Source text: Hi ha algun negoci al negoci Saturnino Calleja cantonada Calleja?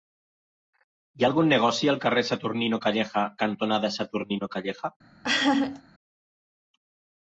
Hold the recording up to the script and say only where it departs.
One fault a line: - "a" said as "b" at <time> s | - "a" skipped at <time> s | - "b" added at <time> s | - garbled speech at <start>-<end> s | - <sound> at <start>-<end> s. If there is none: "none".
- "negoci" said as "carrer" at 2.1 s
- "Saturnino" added at 4.0 s
- laugh at 5.2-5.8 s